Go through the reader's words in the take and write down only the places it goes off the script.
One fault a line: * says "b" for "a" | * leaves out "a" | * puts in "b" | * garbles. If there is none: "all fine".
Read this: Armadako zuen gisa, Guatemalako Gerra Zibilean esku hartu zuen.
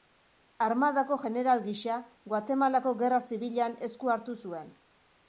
* says "jeneral" for "zuen"